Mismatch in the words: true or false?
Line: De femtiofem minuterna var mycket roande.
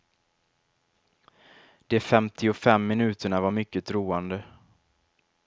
false